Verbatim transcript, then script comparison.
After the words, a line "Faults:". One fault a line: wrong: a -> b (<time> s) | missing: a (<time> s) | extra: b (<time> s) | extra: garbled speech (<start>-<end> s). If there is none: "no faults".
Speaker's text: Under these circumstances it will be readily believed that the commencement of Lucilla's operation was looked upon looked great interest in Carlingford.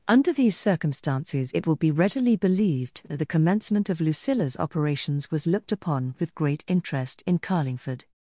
Under these circumstances it will be readily believed that the commencement of Lucilla's operations was looked upon with great interest in Carlingford.
Faults:
wrong: operation -> operations (4.6 s)
wrong: looked -> with (6.2 s)